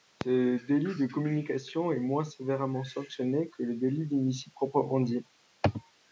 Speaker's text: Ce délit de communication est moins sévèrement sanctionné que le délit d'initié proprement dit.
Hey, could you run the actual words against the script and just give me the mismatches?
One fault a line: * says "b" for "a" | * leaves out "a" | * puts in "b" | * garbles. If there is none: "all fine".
all fine